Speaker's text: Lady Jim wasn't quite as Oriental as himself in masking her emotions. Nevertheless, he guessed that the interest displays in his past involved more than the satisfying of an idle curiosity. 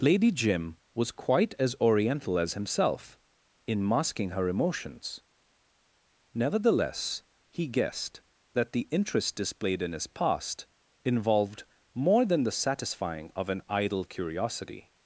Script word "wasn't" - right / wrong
wrong